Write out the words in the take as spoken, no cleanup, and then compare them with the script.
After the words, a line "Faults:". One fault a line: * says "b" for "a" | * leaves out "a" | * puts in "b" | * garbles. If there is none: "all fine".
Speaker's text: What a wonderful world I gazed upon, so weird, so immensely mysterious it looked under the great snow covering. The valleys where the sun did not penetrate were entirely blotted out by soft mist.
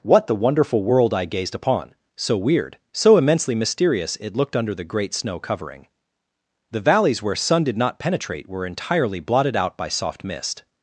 What the wonderful world I gazed upon, so weird, so immensely mysterious it looked under the great snow covering. The valleys where sun did not penetrate were entirely blotted out by soft mist.
Faults:
* says "the" for "a"
* leaves out "the"